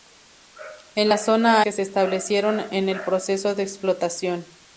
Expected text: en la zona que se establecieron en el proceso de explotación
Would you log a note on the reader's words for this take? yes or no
no